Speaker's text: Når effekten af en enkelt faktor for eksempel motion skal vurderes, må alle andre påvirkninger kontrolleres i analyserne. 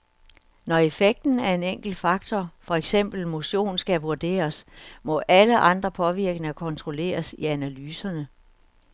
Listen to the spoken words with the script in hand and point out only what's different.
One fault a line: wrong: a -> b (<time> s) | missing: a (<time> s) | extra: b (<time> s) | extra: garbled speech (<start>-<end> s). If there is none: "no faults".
no faults